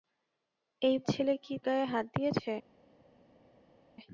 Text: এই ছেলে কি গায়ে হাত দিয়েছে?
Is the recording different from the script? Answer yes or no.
no